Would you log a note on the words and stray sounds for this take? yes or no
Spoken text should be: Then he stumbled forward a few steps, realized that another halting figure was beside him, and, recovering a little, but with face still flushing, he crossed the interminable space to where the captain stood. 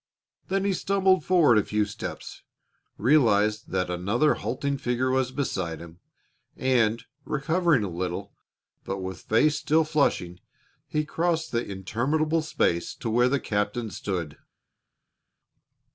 no